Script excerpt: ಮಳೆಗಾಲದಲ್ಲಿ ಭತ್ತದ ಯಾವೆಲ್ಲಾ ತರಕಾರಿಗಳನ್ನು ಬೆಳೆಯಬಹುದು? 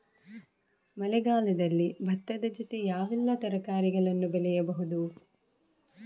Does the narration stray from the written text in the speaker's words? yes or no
yes